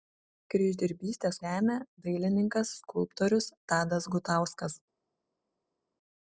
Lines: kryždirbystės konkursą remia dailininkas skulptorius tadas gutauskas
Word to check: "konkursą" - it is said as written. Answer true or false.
false